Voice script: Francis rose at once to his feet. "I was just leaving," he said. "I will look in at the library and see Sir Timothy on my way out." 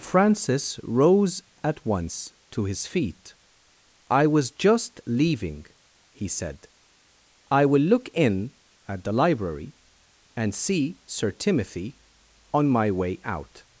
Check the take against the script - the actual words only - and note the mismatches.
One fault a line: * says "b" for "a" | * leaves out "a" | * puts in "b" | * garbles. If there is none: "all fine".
all fine